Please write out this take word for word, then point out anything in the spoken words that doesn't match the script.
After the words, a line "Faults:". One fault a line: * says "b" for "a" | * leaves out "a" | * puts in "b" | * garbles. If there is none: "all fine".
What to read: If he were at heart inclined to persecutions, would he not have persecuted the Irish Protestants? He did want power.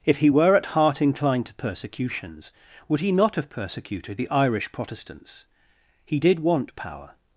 If he were at heart inclined to persecutions, would he not have persecuted the Irish Protestants? He did want power.
Faults:
all fine